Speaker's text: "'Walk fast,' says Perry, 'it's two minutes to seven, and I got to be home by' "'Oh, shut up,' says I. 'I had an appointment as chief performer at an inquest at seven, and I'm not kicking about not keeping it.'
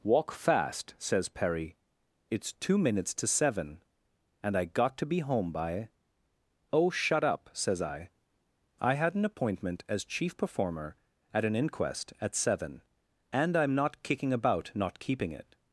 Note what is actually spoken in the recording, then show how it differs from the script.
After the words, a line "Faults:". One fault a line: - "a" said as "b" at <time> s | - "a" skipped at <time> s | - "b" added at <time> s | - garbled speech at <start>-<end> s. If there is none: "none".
"'Walk fast,' says Perry, 'it's two minutes to seven, and I got to be home by' "'Oh, shut up,' says I. 'I had an appointment as chief performer at an inquest at seven, and I'm not kicking about not keeping it.'
Faults:
none